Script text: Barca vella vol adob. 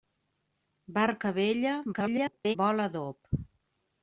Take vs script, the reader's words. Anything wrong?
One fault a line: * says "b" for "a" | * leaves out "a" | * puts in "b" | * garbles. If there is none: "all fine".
* garbles